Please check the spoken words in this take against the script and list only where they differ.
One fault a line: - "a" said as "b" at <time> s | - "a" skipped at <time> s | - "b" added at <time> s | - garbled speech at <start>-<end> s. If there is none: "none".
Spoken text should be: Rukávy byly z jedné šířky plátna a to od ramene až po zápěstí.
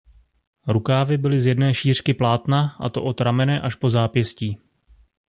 none